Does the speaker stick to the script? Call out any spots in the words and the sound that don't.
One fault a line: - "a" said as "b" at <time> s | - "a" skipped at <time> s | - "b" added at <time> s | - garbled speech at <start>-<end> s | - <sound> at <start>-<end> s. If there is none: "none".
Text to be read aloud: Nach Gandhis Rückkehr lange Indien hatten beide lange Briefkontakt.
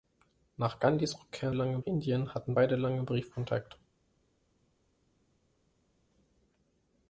none